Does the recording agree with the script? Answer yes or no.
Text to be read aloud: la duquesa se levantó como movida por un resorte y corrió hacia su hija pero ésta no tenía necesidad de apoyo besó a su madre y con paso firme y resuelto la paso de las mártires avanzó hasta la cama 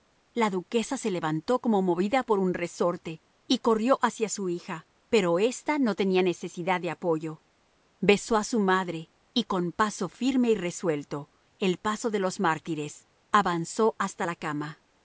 no